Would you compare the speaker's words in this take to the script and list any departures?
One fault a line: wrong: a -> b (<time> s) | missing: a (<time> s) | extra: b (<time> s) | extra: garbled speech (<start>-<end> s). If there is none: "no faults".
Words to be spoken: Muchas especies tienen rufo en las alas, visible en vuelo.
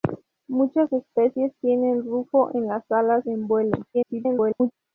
missing: visible (3.2 s)
extra: garbled speech (3.9-4.7 s)